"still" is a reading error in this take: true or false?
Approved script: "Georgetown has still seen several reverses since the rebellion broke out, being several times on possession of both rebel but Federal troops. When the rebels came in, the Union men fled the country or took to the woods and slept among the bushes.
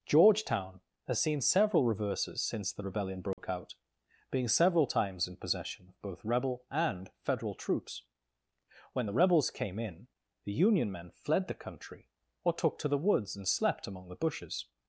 true